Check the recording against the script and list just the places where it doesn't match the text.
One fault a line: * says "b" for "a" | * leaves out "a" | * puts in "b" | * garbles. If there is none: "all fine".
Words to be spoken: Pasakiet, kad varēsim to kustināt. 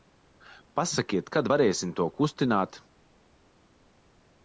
all fine